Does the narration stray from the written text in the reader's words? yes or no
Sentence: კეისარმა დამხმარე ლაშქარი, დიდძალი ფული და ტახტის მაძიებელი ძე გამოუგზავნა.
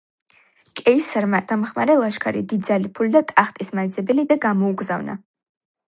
no